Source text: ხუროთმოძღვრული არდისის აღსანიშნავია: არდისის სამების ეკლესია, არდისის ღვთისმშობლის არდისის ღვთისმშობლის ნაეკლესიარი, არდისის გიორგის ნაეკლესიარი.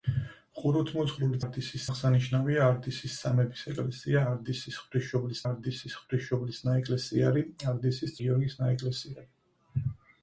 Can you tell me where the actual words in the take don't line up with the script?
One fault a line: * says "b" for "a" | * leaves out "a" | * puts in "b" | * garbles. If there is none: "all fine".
all fine